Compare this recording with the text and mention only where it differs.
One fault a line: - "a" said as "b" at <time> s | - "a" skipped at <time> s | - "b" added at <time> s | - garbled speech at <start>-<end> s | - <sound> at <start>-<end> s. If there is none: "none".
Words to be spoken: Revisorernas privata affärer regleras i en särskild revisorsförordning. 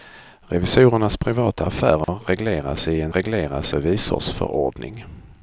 - dropout at 2.0-2.1 s
- "särskild" said as "regleras" at 3.1 s